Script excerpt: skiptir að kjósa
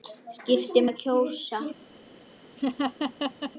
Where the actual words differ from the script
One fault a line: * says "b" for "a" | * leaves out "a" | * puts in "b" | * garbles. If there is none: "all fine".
all fine